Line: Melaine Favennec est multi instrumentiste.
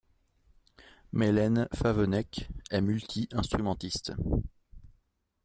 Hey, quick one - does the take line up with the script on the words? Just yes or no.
yes